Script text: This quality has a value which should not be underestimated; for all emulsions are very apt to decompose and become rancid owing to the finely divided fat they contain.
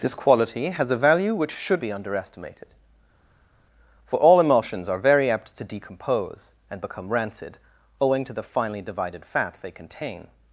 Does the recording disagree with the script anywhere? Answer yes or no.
yes